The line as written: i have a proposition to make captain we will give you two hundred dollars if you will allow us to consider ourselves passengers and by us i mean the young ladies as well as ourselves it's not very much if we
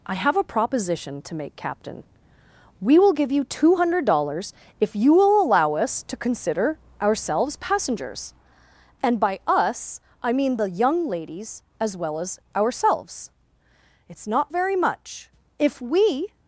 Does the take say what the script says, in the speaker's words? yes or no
yes